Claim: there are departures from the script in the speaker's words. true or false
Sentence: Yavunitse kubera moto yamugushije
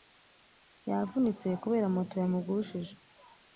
false